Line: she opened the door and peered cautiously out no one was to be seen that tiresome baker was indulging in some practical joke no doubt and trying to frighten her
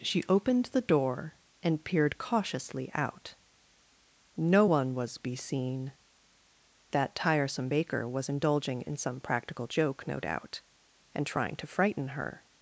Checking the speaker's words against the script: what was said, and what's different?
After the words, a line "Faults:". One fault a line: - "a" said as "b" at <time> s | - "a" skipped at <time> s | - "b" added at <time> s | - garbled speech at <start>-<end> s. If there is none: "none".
she opened the door and peered cautiously out no one was be seen that tiresome baker was indulging in some practical joke no doubt and trying to frighten her
Faults:
- "to" skipped at 5.2 s